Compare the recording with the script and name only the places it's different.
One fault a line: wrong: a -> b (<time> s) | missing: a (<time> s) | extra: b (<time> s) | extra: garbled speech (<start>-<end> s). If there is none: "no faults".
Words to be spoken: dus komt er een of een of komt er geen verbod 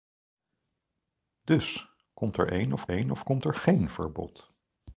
no faults